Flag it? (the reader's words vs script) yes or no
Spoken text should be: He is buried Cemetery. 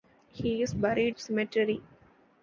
no